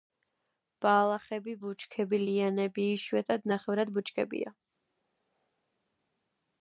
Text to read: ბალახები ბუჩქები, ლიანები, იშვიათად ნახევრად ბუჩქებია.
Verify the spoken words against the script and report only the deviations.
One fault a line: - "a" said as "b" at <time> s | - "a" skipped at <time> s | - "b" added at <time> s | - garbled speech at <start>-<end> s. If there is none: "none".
none